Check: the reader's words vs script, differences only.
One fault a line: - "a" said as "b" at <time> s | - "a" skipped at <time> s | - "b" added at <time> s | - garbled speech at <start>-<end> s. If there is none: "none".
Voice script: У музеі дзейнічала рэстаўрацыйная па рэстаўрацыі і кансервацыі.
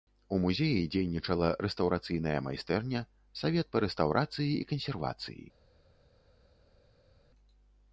- "майстэрня савет" added at 2.5 s